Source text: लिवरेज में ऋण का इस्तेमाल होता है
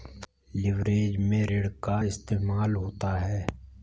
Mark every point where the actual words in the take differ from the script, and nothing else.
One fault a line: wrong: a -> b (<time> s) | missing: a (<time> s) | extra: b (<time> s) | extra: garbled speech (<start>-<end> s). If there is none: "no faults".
no faults